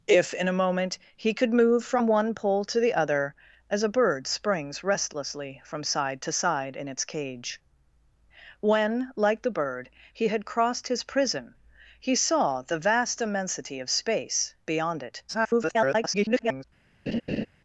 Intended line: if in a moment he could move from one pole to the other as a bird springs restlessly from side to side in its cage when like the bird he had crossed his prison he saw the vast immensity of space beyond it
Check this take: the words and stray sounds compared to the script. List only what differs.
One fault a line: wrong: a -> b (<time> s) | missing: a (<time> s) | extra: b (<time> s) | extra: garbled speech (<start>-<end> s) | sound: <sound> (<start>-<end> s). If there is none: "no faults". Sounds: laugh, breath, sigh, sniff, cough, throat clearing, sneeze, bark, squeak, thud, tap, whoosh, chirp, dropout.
extra: garbled speech (15.3-16.6 s)
sound: laugh (17.1-17.5 s)